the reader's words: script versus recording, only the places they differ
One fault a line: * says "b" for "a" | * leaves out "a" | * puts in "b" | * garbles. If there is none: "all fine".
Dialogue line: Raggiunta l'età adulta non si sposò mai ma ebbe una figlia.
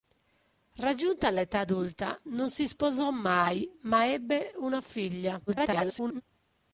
* garbles